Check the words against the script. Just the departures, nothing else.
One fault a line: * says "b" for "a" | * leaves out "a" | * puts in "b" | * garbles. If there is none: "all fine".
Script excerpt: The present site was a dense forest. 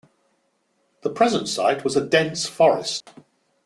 all fine